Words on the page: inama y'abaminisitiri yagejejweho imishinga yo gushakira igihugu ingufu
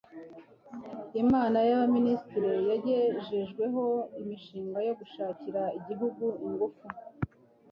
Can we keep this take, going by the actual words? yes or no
yes